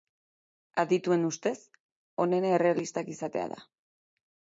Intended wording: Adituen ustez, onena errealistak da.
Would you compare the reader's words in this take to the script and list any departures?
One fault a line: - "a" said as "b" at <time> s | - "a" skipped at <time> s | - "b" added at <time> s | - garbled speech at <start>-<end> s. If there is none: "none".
- "izatea" added at 3.2 s